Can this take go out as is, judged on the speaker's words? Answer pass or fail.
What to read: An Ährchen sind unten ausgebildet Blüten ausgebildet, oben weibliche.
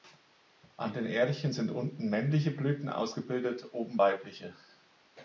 fail